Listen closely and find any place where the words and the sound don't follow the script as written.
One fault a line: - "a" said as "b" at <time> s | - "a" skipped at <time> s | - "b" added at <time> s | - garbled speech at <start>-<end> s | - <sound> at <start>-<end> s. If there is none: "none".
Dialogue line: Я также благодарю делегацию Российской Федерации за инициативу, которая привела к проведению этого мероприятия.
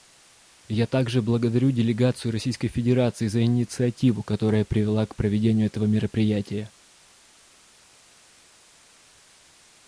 none